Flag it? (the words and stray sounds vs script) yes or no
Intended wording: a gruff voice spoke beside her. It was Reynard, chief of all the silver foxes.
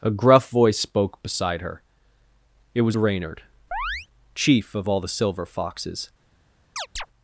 yes